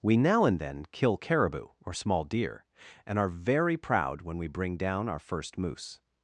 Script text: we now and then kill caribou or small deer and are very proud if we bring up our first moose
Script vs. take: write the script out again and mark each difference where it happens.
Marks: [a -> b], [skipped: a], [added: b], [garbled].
we now and then kill caribou or small deer and are very proud [if -> when] we bring [up -> down] our first moose